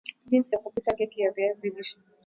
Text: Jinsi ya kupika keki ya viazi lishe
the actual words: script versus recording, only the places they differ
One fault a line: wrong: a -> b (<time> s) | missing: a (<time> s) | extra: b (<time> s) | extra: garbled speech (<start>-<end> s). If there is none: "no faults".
no faults